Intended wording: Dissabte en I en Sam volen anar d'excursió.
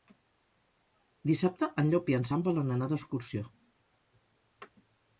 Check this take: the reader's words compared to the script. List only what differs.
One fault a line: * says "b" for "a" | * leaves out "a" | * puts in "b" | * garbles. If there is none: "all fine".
* puts in "Llop"